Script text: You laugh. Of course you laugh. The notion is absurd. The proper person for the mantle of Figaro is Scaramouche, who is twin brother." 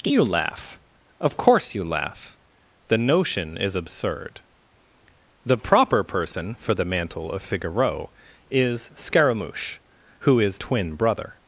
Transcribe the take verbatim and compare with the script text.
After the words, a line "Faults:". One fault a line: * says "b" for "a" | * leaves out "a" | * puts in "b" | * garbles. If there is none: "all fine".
You laugh. Of course you laugh. The notion is absurd. The proper person for the mantle of Figaro is Scaramouche, who is twin brother."
Faults:
all fine